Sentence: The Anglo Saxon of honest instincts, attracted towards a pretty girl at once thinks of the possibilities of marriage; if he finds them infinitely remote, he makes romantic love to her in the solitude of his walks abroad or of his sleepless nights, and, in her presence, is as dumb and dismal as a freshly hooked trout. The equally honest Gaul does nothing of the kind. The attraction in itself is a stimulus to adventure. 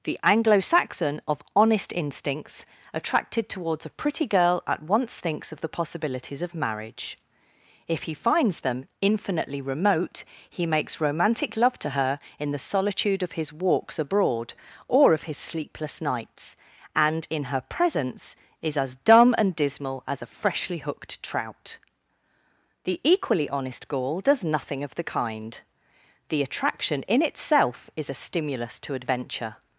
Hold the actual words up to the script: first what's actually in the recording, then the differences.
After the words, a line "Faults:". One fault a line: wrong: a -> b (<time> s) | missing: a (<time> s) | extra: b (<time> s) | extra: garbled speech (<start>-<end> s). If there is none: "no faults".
The Anglo Saxon of honest instincts, attracted towards a pretty girl at once thinks of the possibilities of marriage; if he finds them infinitely remote, he makes romantic love to her in the solitude of his walks abroad or of his sleepless nights, and, in her presence, is as dumb and dismal as a freshly hooked trout. The equally honest Gaul does nothing of the kind. The attraction in itself is a stimulus to adventure.
Faults:
no faults